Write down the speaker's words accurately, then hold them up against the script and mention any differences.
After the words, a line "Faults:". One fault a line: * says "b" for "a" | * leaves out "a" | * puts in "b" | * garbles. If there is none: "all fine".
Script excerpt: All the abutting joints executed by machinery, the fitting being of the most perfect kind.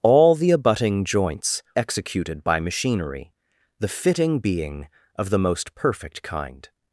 All the abutting joints executed by machinery, the fitting being of the most perfect kind.
Faults:
all fine